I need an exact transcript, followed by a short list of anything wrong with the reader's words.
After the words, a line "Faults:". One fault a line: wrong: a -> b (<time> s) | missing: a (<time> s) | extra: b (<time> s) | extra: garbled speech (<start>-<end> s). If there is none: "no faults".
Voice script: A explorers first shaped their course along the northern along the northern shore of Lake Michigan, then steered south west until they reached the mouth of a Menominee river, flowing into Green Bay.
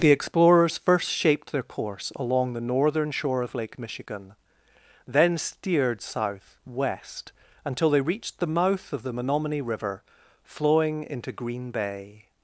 The explorers first shaped their course along the northern shore of Lake Michigan, then steered south west until they reached the mouth of the Menominee river, flowing into Green Bay.
Faults:
wrong: A -> The (0.0 s)
missing: along the northern (3.1 s)
wrong: a -> the (9.0 s)